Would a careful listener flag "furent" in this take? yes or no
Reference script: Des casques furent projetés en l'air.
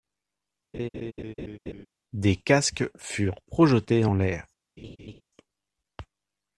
no